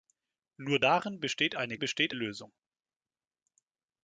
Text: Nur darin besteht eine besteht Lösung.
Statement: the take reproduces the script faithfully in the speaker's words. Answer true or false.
true